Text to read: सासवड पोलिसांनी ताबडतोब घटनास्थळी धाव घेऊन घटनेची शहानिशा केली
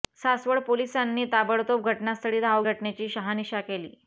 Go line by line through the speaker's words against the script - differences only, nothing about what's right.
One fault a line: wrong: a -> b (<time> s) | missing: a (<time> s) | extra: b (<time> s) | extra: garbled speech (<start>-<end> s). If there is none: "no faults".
missing: घेऊन (2.6 s)